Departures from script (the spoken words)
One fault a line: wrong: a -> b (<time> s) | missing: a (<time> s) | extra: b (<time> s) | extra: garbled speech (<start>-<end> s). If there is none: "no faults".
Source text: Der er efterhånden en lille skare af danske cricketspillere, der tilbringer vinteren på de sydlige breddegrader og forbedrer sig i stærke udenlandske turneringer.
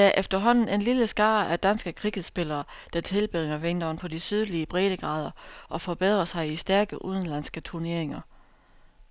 no faults